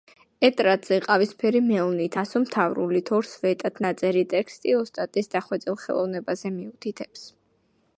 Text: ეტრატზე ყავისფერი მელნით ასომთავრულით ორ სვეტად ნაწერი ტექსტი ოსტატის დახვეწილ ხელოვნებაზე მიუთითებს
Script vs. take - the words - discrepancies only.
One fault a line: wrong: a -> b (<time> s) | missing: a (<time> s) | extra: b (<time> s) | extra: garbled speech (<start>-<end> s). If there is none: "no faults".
no faults